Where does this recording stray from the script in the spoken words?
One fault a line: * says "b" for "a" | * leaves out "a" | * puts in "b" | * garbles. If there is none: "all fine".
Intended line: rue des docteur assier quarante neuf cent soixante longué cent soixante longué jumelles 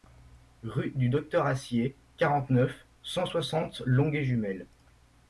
* says "du" for "des"
* leaves out "cent soixante longué"